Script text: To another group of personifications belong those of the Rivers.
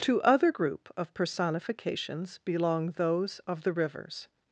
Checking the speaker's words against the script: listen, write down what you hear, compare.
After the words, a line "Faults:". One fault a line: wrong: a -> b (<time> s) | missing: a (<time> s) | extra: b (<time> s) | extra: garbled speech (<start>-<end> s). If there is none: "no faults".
To other group of personifications belong those of the Rivers.
Faults:
wrong: another -> other (0.2 s)